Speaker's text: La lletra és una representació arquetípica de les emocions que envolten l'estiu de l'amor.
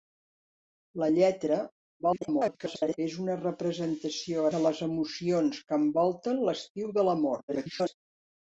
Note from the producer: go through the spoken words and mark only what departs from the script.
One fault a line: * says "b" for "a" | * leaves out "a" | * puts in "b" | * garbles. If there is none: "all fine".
* garbles
* leaves out "arquetípica"
* garbles